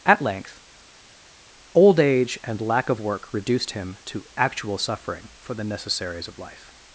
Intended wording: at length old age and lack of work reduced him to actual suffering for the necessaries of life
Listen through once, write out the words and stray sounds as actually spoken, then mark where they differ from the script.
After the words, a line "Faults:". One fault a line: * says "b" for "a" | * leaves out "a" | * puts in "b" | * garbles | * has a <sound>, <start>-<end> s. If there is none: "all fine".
at length old age and lack of work reduced him to actual suffering for the necessaries of life
Faults:
all fine